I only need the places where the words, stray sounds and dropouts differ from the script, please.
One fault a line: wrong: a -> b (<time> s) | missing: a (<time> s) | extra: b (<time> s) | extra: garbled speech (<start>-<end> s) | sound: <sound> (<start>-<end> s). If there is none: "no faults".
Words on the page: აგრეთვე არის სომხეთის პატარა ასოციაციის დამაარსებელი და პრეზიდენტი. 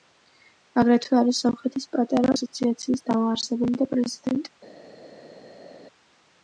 no faults